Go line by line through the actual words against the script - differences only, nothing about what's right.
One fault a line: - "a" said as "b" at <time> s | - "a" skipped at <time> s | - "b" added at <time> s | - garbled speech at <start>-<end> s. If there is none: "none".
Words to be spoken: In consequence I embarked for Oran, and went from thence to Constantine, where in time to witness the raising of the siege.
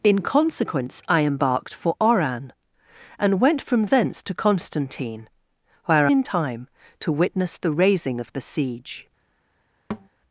none